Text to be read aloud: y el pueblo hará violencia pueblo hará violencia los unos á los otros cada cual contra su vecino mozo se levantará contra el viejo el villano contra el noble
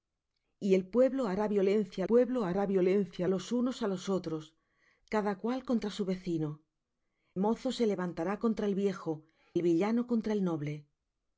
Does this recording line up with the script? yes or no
yes